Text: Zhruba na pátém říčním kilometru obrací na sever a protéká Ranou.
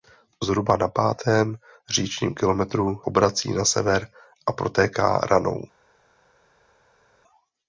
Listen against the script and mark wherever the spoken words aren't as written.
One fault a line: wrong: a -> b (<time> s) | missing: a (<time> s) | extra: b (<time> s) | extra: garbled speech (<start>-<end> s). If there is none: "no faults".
no faults